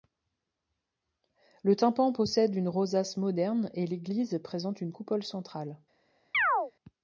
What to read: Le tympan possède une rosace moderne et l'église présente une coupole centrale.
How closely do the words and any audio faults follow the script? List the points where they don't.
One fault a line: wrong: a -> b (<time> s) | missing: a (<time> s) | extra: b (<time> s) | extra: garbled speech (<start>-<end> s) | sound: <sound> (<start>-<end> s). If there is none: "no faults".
sound: chirp (6.3-6.7 s)